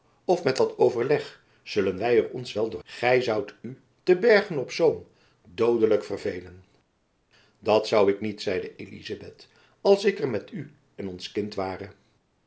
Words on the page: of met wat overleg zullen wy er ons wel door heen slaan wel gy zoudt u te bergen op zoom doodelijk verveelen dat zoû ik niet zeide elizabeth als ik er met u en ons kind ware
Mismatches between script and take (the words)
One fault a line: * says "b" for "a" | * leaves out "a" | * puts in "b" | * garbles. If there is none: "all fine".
* leaves out "heen slaan wel"